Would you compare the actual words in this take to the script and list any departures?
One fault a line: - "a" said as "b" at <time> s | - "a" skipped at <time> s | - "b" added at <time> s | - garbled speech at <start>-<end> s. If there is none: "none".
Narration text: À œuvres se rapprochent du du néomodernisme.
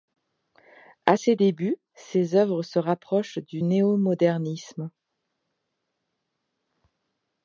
- "ses débuts ses" added at 1.1 s
- "du" skipped at 3.6 s